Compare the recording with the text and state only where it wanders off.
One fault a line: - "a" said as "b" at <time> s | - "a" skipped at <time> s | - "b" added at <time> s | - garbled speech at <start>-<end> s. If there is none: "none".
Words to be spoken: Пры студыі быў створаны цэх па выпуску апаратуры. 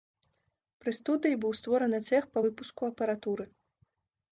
none